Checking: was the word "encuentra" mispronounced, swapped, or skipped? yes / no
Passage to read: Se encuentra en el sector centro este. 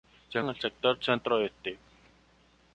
yes